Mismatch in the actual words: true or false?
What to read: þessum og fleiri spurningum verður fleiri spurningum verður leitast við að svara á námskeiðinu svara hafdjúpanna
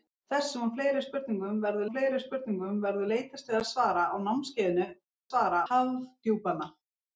false